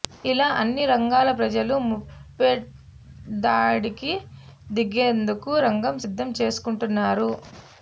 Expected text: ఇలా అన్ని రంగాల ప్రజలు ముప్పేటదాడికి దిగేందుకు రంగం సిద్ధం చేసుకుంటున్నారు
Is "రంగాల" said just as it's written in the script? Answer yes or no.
yes